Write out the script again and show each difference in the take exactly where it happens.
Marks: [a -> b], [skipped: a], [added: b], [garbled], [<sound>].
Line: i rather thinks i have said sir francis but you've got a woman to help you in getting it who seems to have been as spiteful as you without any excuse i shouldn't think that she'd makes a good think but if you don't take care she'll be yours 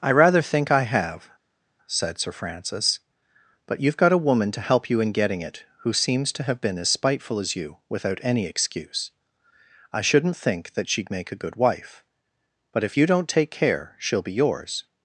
i rather [thinks -> think] i have said sir francis but you've got a woman to help you in getting it who seems to have been as spiteful as you without any excuse i shouldn't think that she'd [makes -> make] a good [think -> wife] but if you don't take care she'll be yours